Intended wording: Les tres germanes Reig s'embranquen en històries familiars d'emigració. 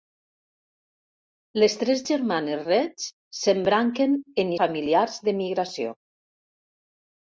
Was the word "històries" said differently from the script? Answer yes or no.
yes